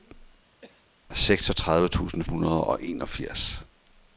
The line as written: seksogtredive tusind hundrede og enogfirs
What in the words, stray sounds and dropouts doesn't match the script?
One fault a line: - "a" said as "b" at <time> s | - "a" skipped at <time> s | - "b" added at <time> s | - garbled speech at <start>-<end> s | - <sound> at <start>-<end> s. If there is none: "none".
- cough at 0.6-0.9 s